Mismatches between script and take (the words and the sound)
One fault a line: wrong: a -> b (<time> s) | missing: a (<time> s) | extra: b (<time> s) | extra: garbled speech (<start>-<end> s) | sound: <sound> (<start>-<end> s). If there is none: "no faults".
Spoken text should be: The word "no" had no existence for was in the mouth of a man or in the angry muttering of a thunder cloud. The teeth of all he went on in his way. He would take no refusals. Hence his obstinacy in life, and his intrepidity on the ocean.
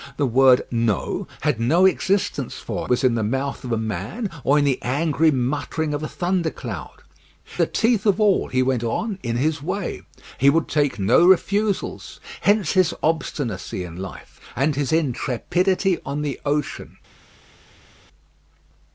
no faults